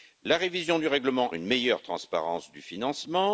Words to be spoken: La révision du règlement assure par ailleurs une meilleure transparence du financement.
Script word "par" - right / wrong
wrong